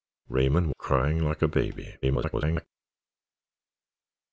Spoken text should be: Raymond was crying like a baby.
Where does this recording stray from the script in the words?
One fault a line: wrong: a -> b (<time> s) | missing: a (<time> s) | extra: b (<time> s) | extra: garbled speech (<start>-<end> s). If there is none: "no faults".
missing: was (0.7 s)
extra: garbled speech (2.0-2.7 s)